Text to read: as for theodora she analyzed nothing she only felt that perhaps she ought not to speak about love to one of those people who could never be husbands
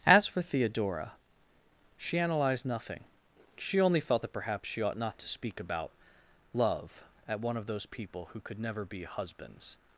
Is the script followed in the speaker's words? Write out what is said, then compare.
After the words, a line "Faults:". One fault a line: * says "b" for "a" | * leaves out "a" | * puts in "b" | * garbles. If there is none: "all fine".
as for theodora she analyzed nothing she only felt that perhaps she ought not to speak about love at one of those people who could never be husbands
Faults:
* says "at" for "to"